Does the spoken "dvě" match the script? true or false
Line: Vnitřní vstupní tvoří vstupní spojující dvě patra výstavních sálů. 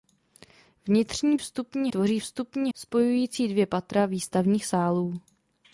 true